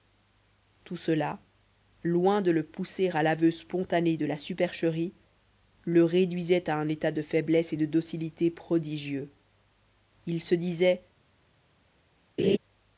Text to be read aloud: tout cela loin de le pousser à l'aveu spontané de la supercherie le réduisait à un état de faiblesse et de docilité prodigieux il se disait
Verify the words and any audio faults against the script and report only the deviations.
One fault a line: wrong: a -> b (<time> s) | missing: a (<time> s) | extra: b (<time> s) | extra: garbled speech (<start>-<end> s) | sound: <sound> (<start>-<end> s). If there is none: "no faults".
sound: laugh (12.4-12.6 s)